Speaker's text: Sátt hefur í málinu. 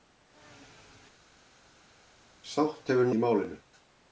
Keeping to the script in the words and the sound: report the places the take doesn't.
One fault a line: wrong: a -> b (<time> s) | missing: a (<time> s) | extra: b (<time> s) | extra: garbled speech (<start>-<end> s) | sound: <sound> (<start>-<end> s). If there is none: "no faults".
no faults